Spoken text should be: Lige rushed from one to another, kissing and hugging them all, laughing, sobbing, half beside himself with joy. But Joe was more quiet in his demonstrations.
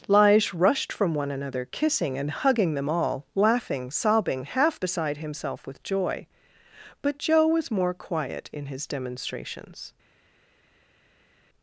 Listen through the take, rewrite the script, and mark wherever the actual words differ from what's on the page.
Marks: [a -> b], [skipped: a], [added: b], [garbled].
Lige rushed from one [skipped: to] another, kissing and hugging them all, laughing, sobbing, half beside himself with joy. But Joe was more quiet in his demonstrations.